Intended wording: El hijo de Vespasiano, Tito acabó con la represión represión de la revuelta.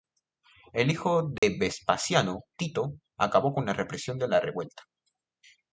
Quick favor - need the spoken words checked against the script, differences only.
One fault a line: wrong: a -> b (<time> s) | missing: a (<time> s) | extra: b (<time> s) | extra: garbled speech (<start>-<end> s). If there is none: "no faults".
missing: represión (4.2 s)